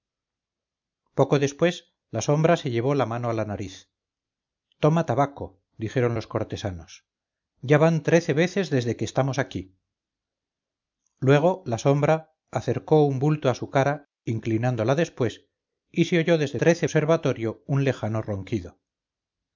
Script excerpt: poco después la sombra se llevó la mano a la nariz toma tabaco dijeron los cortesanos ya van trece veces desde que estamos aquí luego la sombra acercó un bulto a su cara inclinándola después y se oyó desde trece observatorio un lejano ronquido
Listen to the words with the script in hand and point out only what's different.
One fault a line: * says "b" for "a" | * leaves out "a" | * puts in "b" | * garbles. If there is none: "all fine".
all fine